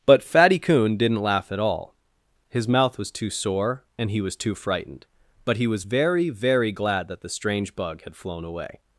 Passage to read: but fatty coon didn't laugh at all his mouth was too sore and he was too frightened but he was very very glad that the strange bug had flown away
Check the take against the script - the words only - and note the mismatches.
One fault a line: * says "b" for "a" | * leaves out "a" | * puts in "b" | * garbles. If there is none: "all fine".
all fine